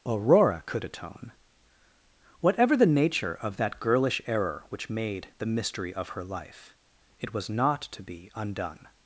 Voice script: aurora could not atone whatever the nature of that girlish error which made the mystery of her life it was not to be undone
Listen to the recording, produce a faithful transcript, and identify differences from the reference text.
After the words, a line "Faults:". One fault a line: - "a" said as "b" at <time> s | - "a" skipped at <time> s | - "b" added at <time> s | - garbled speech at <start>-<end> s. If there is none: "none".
aurora could atone whatever the nature of that girlish error which made the mystery of her life it was not to be undone
Faults:
- "not" skipped at 0.8 s